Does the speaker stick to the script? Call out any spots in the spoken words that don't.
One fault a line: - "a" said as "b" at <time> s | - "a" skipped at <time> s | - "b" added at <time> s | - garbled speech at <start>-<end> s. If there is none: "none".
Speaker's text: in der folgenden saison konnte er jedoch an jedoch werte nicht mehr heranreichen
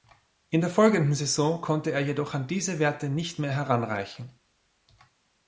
- "jedoch" said as "diese" at 2.5 s